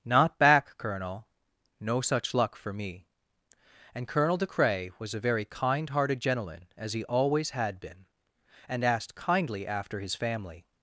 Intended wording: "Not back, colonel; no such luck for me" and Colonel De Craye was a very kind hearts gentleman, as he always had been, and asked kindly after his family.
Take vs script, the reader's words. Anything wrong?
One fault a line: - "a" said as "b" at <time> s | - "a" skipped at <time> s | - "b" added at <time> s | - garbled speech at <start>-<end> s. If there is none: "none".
- "hearts" said as "hearted" at 5.9 s